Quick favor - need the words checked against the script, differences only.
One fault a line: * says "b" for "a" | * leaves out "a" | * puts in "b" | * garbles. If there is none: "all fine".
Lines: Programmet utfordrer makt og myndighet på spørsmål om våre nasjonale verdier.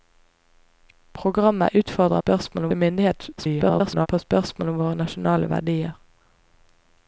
* says "spørsmål" for "makt"
* garbles